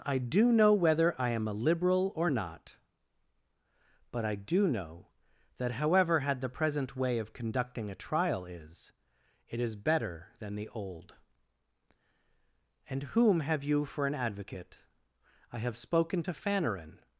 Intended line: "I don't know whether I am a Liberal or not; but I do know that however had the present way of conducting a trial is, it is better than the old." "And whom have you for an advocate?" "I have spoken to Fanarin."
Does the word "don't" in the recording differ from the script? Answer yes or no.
yes